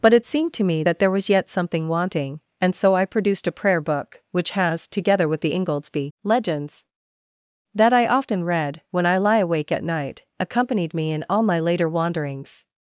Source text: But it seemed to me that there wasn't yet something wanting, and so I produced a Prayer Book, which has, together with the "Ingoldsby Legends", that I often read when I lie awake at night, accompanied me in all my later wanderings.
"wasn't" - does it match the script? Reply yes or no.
no